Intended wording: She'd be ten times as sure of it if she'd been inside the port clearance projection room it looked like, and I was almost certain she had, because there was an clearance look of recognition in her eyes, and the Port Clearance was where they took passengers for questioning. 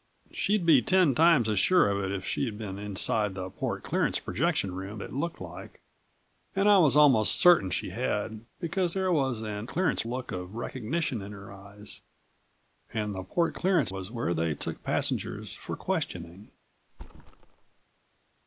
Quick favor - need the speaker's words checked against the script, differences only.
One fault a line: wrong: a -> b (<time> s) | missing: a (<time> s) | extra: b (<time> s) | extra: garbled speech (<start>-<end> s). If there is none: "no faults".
no faults